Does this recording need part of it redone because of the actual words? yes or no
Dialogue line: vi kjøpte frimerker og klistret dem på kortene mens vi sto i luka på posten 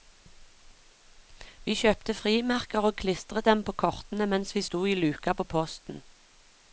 no